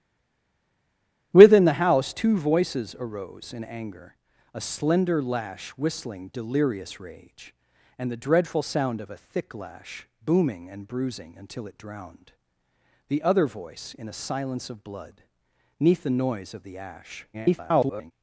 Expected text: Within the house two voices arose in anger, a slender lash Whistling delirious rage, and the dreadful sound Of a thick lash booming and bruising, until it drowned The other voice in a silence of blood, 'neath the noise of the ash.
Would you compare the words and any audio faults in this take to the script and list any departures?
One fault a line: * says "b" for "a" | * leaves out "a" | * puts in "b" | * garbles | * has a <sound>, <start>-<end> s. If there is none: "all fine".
* garbles